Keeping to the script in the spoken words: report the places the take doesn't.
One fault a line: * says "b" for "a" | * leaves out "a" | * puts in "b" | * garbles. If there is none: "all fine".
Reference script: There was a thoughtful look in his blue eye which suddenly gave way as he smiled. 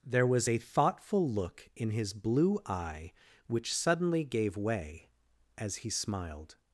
all fine